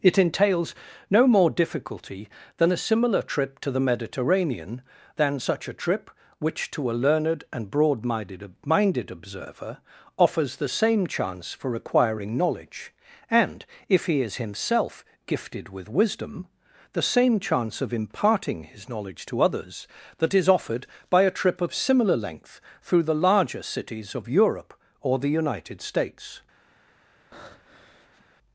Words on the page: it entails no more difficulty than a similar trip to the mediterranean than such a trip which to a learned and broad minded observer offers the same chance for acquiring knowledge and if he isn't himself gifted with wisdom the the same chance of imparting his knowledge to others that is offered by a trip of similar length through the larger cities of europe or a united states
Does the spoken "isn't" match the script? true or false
false